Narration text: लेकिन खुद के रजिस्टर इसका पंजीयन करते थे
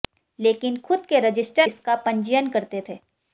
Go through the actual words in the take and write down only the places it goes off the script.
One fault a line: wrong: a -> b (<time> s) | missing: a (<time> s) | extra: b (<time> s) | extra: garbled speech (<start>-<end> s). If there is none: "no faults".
no faults